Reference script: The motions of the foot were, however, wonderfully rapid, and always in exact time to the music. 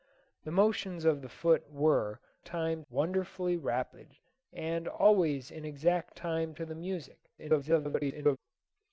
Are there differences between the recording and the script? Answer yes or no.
yes